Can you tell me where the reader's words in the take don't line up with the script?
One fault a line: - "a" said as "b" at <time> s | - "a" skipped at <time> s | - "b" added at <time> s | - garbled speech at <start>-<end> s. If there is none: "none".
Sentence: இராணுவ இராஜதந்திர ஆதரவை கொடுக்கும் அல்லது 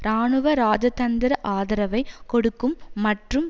- "அல்லது" said as "மற்றும்" at 3.0 s